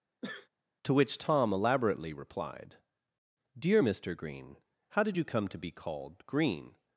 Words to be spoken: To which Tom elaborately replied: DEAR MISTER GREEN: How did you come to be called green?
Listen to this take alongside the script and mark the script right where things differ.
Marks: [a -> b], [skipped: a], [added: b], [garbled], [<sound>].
[sneeze] To which Tom elaborately replied: DEAR MISTER GREEN: How did you come to be called green?